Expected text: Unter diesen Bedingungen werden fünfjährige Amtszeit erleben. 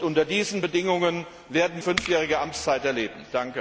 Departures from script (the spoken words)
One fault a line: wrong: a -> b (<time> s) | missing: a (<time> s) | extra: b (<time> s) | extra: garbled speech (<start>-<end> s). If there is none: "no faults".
no faults